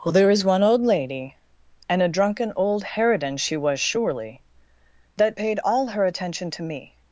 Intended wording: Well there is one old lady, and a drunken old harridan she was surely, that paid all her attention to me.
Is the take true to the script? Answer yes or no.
yes